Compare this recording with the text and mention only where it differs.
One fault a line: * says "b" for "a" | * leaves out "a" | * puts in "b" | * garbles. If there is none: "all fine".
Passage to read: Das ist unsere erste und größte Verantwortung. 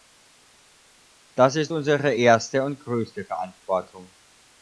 all fine